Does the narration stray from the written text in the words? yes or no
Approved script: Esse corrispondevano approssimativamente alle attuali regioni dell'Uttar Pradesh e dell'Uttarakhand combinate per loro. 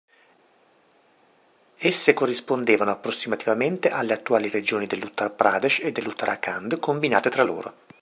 yes